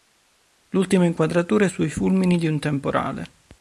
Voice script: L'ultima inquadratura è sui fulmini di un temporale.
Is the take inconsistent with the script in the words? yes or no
no